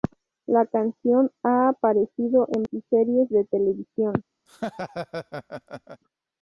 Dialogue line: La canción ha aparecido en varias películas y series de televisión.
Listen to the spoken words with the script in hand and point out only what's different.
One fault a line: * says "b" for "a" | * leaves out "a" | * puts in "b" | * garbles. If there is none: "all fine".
* leaves out "varias películas"